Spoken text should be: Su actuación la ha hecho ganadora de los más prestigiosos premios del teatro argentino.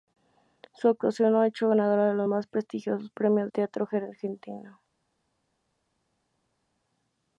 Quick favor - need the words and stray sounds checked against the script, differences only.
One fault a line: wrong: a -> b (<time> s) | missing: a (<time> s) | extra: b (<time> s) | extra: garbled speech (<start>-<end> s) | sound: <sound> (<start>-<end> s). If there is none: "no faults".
missing: del (3.5 s)